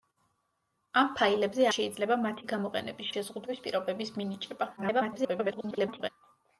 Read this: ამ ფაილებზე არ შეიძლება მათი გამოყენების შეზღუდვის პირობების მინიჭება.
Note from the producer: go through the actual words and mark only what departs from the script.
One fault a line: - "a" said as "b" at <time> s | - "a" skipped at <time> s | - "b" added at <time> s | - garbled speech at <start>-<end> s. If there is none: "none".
- "არ" skipped at 1.7 s
- garbled speech at 4.8-6.1 s